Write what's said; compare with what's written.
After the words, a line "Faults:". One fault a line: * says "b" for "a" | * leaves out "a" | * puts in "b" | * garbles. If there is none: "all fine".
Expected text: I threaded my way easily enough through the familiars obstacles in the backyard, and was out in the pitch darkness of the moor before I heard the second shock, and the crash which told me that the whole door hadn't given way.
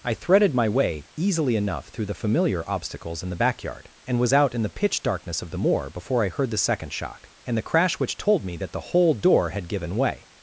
I threaded my way easily enough through the familiar obstacles in the backyard, and was out in the pitch darkness of the moor before I heard the second shock, and the crash which told me that the whole door had given way.
Faults:
* says "familiar" for "familiars"
* says "had" for "hadn't"